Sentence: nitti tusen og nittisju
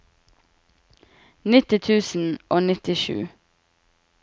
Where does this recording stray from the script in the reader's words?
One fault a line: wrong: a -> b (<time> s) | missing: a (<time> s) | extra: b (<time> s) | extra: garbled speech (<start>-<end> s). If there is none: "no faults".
no faults